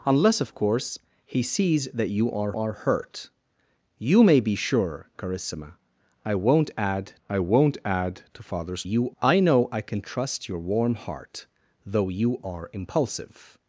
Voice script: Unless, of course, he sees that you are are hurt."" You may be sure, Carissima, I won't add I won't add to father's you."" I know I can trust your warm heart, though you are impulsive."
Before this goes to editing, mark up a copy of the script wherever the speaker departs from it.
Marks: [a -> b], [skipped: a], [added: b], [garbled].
Unless, of course, he sees that you are are hurt."" You may be sure, Carissima, I won't add I won't add to father's you."" I know I can trust your warm heart, though you are impulsive."